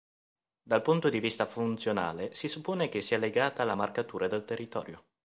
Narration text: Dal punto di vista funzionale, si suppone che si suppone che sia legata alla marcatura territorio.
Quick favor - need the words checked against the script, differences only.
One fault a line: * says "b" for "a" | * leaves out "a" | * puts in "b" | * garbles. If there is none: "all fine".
* leaves out "si suppone che"
* puts in "del"